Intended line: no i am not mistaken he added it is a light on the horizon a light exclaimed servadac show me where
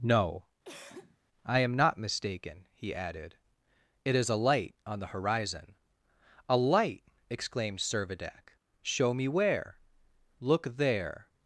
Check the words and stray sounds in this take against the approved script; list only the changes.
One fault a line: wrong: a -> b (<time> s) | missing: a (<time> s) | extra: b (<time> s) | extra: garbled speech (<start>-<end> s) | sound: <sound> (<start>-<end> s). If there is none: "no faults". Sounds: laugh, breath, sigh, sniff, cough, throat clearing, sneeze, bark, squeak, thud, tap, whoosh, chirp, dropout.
sound: cough (0.6-1.2 s)
extra: look there (10.4 s)